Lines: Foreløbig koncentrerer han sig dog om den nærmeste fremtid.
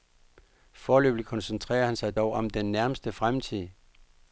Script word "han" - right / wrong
right